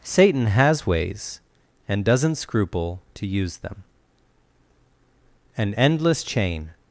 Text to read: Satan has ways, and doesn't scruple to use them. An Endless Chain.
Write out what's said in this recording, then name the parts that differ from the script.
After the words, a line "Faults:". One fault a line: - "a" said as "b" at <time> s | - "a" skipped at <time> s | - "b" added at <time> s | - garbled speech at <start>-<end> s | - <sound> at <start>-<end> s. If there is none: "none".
Satan has ways, and doesn't scruple to use them. An Endless Chain.
Faults:
none